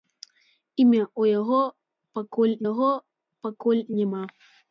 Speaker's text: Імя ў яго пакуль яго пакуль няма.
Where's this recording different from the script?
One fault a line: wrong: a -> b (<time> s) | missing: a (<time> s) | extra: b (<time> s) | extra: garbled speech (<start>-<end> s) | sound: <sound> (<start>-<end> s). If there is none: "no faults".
no faults